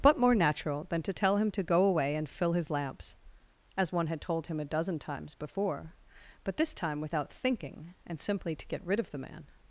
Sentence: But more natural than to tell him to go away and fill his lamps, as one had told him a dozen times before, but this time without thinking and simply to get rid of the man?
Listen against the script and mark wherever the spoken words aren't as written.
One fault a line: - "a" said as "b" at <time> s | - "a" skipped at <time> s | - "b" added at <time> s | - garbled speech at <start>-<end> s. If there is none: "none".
none